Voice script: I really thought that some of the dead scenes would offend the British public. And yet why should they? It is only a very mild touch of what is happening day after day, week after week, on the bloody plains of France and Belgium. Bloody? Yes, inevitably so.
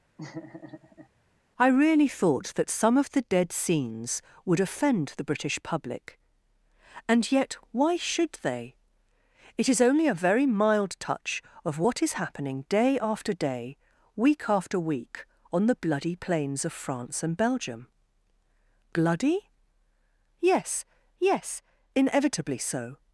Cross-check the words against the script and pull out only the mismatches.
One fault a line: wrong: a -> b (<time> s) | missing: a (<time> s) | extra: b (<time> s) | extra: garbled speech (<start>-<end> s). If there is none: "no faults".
extra: yes (21.2 s)